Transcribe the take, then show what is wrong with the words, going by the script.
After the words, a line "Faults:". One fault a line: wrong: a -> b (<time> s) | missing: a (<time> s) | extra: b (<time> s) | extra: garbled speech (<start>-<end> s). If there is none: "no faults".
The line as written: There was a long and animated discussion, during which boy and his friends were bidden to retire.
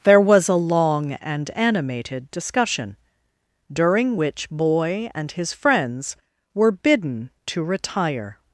There was a long and animated discussion, during which boy and his friends were bidden to retire.
Faults:
no faults